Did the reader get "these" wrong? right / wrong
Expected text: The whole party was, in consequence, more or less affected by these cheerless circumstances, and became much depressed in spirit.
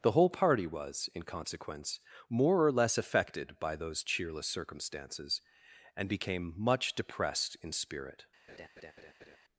wrong